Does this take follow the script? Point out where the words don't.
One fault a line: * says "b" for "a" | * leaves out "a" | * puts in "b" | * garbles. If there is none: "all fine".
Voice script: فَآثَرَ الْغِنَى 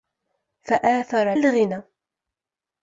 all fine